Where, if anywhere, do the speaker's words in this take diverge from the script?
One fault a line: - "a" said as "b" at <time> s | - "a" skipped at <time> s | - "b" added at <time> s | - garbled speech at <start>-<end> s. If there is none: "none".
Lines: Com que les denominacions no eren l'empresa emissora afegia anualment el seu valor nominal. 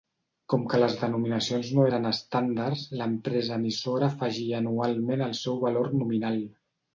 - "estàndards" added at 2.1 s